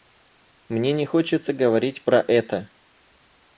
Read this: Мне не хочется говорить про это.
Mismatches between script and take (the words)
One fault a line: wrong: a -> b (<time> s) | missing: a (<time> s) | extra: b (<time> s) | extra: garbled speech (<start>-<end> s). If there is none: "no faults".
no faults